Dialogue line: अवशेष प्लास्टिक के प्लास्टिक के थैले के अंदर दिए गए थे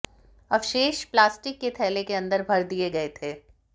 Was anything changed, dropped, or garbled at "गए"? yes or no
no